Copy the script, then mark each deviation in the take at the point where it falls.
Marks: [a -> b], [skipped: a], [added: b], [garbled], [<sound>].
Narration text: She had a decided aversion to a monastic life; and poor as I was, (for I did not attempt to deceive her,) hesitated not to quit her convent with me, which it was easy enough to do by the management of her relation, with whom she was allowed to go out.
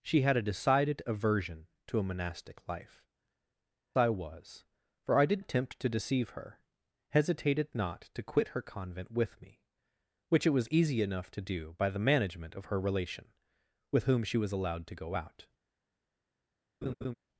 She had a decided aversion to a monastic life; [skipped: and poor as] I was, (for I did [skipped: not] attempt to deceive her,) hesitated not to quit her convent with me, which it was easy enough to do by the management of her relation, with whom she was allowed to go out. [laugh]